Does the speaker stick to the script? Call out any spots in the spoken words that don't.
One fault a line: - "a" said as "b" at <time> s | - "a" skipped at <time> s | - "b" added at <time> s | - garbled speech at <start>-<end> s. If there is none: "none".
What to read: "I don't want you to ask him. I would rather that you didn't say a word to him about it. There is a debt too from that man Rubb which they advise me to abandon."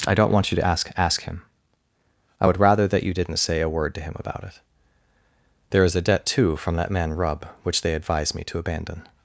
- "ask" added at 1.0 s